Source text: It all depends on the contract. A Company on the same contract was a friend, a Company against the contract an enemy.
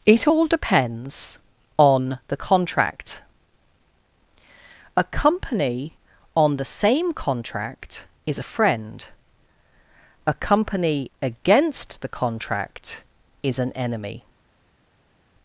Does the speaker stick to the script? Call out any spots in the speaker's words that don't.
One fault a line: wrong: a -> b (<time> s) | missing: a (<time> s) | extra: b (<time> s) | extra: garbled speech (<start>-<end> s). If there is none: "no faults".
wrong: was -> is (8.2 s)
extra: is (13.4 s)